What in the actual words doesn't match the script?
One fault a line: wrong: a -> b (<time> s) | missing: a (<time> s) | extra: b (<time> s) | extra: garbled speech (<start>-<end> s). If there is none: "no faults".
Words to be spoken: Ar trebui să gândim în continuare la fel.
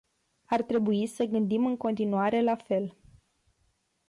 no faults